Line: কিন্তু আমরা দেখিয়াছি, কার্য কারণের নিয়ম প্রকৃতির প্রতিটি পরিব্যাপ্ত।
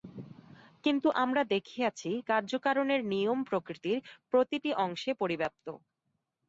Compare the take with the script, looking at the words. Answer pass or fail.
fail